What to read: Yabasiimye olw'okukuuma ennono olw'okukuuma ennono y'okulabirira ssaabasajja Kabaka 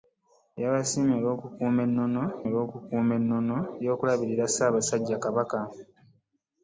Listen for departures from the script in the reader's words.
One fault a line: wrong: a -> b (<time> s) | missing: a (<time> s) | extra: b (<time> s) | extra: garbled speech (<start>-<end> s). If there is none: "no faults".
no faults